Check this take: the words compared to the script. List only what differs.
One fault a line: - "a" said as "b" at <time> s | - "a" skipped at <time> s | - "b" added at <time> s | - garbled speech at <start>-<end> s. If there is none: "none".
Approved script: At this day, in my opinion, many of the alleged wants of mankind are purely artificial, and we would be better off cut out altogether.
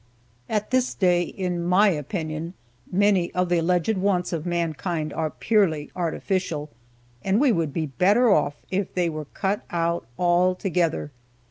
- "if they were" added at 8.7 s